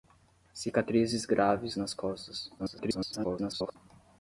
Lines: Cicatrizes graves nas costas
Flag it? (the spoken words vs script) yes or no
yes